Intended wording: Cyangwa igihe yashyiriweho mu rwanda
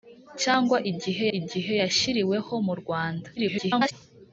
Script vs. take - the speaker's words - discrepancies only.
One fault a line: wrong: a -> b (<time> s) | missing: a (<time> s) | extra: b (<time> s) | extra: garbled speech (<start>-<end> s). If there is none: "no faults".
extra: igihe (1.4 s)
extra: garbled speech (3.4-3.9 s)